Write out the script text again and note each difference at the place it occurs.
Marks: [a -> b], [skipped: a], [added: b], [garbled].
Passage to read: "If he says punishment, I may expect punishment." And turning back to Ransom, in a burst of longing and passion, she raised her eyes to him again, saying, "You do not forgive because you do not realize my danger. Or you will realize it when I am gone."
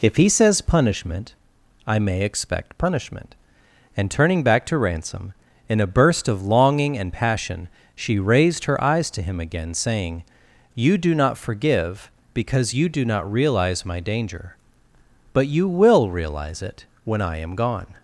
"If he says punishment, I may expect punishment." And turning back to Ransom, in a burst of longing and passion, she raised her eyes to him again, saying, "You do not forgive because you do not realize my danger. [Or -> But] you will realize it when I am gone."